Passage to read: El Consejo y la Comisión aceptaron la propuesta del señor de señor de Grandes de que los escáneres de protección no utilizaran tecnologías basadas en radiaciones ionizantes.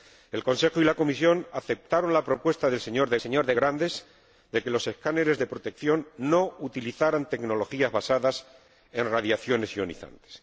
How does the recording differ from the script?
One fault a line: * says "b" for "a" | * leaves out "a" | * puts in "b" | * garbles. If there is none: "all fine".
all fine